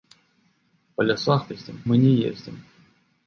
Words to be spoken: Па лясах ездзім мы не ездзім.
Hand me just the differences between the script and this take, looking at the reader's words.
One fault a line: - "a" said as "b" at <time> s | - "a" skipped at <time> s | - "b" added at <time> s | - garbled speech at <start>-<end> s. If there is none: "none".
none